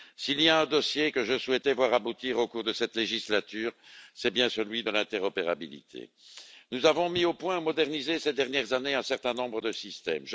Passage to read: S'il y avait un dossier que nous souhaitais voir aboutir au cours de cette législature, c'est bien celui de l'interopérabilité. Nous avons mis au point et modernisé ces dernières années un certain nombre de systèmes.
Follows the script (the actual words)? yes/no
no